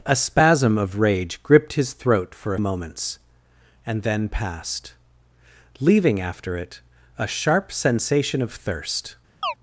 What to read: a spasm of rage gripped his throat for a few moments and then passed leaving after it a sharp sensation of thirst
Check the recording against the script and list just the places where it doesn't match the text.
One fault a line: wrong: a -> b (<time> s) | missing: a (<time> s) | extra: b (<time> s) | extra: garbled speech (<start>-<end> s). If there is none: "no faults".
missing: few (2.6 s)